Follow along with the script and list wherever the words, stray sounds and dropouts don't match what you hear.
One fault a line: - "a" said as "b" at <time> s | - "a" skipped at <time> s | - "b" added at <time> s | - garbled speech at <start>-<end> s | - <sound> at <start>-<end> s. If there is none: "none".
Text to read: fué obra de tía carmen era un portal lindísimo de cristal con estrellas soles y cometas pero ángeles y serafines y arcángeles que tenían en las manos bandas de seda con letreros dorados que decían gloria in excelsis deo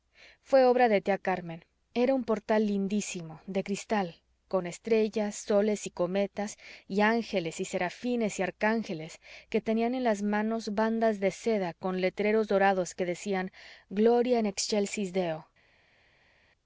- "pero" said as "y" at 6.9 s